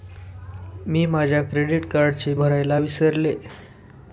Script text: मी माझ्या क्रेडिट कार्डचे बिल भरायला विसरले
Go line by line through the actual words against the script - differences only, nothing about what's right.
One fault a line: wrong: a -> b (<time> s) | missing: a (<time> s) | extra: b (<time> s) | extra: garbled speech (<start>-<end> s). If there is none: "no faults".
missing: बिल (2.3 s)